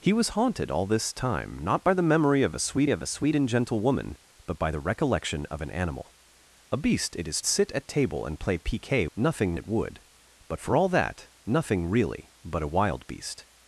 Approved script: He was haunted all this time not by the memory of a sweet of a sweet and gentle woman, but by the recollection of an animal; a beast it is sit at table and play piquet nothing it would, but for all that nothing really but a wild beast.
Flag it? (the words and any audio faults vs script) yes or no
no